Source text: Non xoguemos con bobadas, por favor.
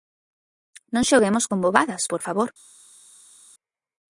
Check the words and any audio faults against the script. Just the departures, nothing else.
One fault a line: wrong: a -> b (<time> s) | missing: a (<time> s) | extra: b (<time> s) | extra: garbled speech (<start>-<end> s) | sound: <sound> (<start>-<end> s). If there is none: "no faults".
no faults